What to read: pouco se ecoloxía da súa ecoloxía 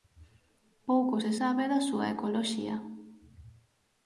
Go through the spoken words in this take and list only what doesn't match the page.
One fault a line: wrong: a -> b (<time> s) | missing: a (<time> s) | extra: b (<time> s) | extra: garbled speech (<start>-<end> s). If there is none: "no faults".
wrong: ecoloxía -> sabe (1.4 s)